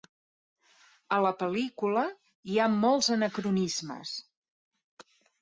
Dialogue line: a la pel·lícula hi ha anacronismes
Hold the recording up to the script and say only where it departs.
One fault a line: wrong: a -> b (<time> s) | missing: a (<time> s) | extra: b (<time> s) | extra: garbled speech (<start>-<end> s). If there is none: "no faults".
extra: molts (2.8 s)